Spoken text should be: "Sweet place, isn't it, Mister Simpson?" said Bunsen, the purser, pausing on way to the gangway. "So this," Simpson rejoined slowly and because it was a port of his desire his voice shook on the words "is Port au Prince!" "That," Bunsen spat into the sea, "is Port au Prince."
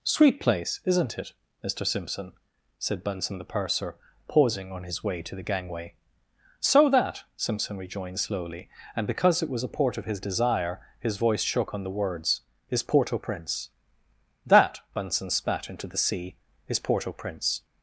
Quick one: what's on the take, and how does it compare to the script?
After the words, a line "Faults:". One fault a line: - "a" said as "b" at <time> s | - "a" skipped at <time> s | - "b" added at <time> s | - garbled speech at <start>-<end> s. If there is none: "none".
"Sweet place, isn't it, Mister Simpson?" said Bunsen, the purser, pausing on his way to the gangway. "So that," Simpson rejoined slowly and because it was a port of his desire his voice shook on the words "is Port au Prince!" "That," Bunsen spat into the sea, "is Port au Prince."
Faults:
- "his" added at 4.8 s
- "this" said as "that" at 6.9 s